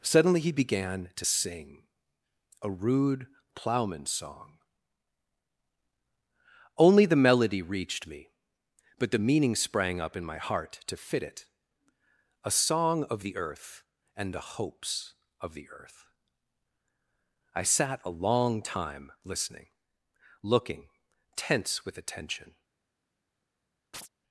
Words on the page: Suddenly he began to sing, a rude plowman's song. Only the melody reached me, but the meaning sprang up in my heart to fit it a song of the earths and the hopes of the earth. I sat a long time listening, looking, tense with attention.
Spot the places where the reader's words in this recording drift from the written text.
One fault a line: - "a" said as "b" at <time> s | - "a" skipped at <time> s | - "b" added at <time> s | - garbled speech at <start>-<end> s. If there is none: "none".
- "earths" said as "earth" at 13.4 s